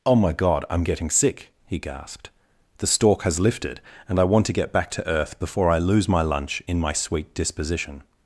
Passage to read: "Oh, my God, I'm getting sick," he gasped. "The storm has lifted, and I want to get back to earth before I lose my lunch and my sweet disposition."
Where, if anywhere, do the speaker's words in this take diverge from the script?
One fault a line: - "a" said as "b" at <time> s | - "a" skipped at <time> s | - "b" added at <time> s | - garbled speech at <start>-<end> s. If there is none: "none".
- "storm" said as "stork" at 2.9 s
- "and" said as "in" at 6.7 s